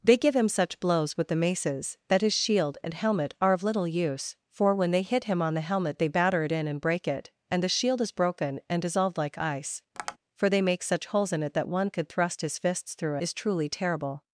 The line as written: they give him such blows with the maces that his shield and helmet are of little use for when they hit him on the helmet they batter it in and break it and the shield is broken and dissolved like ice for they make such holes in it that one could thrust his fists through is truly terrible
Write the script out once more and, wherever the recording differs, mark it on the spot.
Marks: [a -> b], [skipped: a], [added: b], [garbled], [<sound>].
they give him such blows with the maces that his shield and helmet are of little use for when they hit him on the helmet they batter it in and break it and the shield is broken and dissolved like ice [tap] for they make such holes in it that one could thrust his fists through is truly terrible